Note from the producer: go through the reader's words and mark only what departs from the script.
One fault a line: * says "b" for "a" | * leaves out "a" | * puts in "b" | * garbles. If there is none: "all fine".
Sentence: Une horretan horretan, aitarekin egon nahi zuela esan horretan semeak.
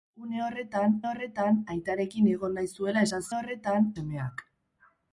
all fine